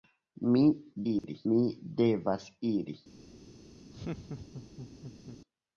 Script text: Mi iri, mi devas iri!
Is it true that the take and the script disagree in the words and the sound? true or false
true